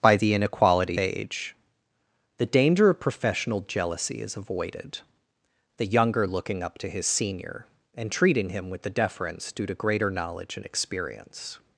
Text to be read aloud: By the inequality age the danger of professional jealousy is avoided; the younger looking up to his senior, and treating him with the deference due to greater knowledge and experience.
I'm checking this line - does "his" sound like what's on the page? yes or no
yes